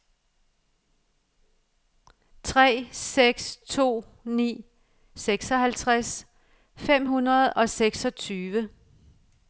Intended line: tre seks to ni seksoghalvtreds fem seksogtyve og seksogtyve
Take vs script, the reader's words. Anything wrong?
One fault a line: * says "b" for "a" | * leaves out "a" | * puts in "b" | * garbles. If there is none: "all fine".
* says "hundrede" for "seksogtyve"